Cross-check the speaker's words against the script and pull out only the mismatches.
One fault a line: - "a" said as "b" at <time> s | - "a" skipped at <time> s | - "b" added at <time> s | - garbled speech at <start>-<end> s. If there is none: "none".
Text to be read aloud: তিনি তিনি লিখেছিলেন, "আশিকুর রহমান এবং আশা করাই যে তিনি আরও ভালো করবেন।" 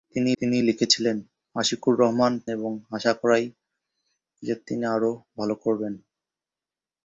none